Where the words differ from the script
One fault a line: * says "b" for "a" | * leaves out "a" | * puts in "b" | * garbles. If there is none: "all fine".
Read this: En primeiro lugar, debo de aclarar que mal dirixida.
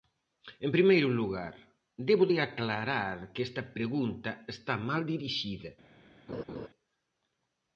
* puts in "esta pregunta está"